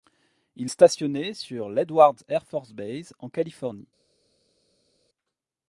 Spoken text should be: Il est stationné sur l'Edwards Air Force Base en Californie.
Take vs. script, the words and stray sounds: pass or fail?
fail